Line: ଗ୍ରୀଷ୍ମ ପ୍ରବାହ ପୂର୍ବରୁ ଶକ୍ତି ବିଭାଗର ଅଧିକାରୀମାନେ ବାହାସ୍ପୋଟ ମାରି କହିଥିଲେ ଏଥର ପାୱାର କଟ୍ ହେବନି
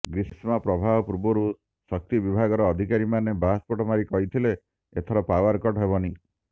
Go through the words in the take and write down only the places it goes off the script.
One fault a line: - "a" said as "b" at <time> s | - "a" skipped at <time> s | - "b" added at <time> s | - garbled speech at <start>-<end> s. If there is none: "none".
none